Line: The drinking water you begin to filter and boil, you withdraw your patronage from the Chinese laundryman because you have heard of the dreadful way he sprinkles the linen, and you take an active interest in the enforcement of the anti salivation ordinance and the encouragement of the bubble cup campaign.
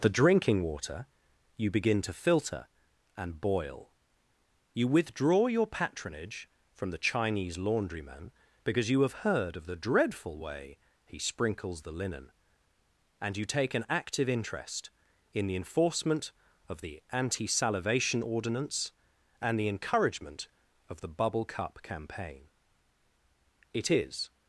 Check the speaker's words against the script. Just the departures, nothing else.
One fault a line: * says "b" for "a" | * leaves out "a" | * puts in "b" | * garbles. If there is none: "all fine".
* puts in "It is"